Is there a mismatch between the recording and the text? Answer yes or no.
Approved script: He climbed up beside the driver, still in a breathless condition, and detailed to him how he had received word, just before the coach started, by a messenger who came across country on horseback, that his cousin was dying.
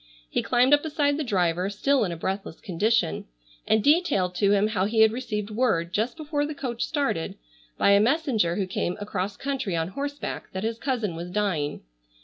no